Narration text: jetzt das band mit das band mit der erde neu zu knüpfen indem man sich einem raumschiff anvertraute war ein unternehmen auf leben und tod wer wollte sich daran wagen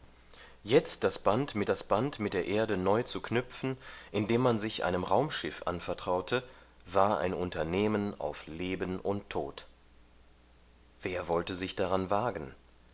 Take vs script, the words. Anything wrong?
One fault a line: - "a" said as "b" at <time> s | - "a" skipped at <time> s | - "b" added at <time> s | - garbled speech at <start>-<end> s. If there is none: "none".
none